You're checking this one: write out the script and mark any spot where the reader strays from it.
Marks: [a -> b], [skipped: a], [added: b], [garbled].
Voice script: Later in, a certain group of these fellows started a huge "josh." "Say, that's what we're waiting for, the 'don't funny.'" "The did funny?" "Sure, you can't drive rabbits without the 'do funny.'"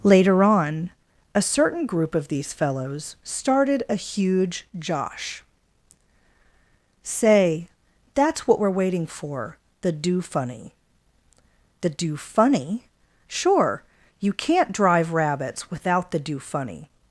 Later [in, -> on] a certain group of these fellows started a huge "josh." "Say, that's what we're waiting for, the ['don't -> do] funny.'" "The [did -> do] funny?" "Sure, you can't drive rabbits without the 'do funny.'"